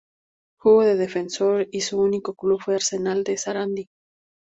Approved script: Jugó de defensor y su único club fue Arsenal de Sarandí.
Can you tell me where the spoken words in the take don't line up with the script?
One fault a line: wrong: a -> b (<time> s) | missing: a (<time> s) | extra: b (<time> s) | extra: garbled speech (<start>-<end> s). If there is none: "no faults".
no faults